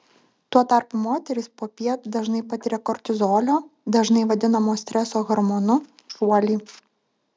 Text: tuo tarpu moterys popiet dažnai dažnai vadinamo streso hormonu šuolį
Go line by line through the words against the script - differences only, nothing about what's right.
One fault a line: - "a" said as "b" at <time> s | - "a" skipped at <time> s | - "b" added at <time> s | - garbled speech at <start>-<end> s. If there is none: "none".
- "patiria kortizolio" added at 2.5 s